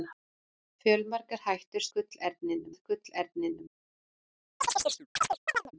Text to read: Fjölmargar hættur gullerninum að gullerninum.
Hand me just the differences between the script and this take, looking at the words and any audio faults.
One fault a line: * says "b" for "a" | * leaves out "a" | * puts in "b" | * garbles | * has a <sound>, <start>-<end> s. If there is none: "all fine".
* has a chirp, 4.6-5.7 s